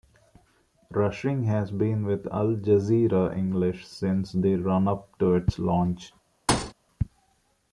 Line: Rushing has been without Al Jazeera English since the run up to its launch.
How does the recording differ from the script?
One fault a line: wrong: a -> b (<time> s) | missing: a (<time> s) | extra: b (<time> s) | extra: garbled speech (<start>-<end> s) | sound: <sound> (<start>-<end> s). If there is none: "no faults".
wrong: without -> with (2.0 s)
sound: thud (6.5-6.7 s)